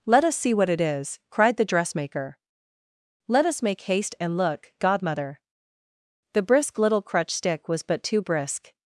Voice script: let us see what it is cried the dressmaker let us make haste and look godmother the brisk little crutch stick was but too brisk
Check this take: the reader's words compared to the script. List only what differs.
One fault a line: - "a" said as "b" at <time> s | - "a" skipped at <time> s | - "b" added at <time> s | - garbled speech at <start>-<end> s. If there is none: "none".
none